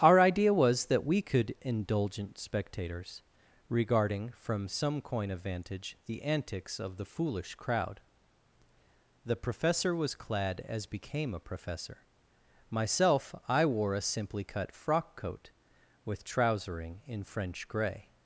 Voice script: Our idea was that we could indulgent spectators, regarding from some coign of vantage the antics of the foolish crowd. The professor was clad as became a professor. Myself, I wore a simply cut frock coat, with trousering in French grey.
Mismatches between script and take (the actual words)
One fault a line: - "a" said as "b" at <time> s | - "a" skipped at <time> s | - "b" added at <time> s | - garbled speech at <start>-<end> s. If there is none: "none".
none